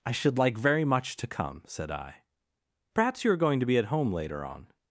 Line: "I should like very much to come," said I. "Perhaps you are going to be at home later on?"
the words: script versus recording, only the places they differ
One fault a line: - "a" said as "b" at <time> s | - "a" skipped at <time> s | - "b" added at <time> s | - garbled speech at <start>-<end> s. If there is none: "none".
none